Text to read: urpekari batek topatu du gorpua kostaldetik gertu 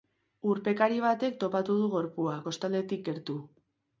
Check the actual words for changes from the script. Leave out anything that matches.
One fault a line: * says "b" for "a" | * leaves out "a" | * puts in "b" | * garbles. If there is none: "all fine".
all fine